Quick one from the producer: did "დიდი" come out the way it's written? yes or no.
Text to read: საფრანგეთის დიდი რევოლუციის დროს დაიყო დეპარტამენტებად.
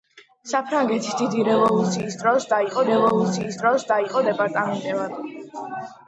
yes